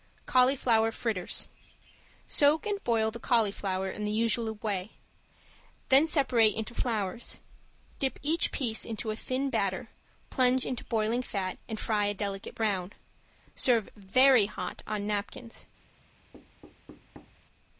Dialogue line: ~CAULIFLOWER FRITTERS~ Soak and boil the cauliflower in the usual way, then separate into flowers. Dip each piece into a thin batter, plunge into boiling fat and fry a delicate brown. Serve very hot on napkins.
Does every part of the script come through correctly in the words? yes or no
yes